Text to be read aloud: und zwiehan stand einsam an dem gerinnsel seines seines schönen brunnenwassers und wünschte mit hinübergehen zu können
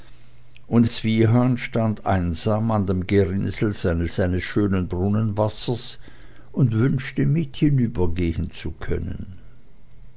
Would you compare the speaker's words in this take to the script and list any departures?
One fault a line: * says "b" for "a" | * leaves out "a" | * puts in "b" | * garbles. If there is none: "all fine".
all fine